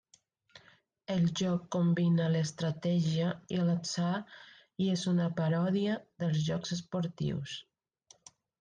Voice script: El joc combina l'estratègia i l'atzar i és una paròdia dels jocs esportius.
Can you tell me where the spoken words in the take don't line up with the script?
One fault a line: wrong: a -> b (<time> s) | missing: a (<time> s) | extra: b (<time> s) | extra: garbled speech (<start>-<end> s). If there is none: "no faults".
no faults